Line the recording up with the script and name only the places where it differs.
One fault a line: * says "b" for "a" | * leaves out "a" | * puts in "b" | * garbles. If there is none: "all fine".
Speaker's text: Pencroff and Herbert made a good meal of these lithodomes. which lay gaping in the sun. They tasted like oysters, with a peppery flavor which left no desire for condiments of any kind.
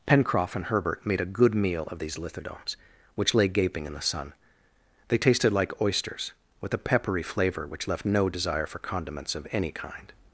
all fine